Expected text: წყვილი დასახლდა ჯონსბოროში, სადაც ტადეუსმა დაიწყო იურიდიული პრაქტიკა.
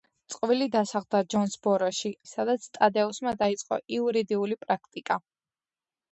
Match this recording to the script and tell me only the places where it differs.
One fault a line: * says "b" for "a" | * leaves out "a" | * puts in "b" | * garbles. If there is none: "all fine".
all fine